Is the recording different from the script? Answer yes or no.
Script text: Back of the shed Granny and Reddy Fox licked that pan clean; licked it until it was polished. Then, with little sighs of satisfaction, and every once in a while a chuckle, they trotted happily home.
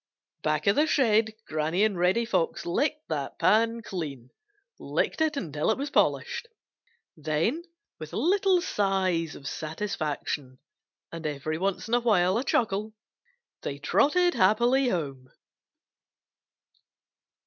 no